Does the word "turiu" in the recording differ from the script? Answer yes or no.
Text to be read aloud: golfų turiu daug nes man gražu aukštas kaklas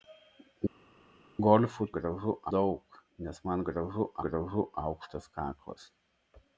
yes